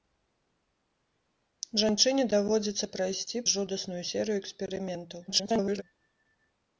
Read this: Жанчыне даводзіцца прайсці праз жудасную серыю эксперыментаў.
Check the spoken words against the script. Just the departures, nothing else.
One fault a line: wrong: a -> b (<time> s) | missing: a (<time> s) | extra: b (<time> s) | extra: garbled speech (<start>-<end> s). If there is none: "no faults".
missing: праз (3.5 s)
extra: garbled speech (5.3-5.8 s)